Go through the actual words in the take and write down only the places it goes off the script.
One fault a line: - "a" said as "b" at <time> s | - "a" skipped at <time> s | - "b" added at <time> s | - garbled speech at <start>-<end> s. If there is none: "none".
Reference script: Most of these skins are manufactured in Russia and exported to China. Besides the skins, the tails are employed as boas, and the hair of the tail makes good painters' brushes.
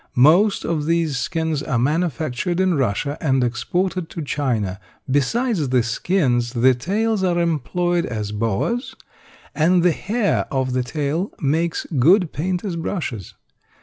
none